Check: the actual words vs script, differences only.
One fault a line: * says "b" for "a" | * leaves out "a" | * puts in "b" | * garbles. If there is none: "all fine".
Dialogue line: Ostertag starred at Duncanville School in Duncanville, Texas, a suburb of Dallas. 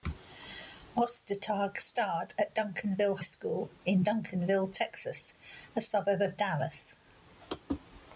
all fine